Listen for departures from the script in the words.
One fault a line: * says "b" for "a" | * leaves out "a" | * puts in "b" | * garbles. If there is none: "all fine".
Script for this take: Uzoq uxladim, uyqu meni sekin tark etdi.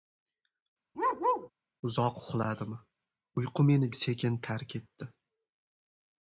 all fine